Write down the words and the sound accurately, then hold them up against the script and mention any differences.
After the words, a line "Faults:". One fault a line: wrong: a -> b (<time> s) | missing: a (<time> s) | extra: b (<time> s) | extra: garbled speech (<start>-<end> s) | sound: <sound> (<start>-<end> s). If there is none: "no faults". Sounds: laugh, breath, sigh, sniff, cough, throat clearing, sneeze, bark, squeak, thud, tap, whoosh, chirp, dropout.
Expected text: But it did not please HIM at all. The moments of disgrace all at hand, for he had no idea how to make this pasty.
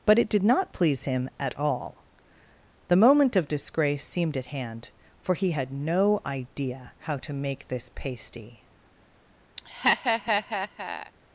But it did not please HIM at all. The moment of disgrace seemed at hand, for he had no idea how to make this pasty.
Faults:
wrong: moments -> moment (3.0 s)
wrong: all -> seemed (4.1 s)
sound: laugh (9.6-11.1 s)